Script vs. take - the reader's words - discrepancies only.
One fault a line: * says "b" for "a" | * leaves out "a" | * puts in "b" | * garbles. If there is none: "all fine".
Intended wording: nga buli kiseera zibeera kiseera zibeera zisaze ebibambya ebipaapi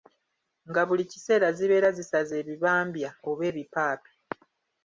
* leaves out "kiseera zibeera"
* puts in "oba"